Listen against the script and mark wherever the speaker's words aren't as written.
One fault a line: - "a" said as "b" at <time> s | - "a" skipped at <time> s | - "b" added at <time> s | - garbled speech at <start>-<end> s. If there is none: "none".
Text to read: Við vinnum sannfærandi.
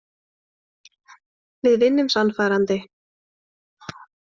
none